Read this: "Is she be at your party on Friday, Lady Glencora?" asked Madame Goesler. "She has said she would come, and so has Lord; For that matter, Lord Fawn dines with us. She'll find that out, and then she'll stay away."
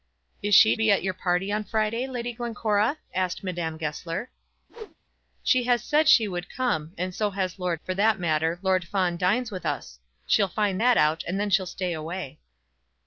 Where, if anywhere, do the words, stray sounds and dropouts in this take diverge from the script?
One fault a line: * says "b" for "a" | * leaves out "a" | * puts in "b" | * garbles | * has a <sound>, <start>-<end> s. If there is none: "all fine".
* has a whoosh, 4.7-5.0 s